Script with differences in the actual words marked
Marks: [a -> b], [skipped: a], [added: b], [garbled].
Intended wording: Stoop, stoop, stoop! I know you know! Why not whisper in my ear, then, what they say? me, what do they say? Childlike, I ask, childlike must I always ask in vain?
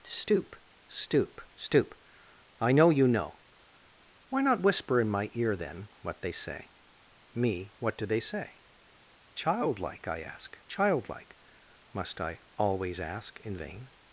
Stoop, stoop, stoop! I know you know! Why not whisper in my ear, then, what they say? me, what do they say? Childlike, I ask, childlike must I always ask in vain?